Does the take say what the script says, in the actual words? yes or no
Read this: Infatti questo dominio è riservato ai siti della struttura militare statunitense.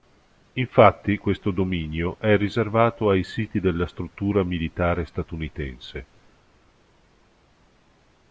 yes